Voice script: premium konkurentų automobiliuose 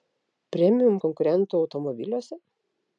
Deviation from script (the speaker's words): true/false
false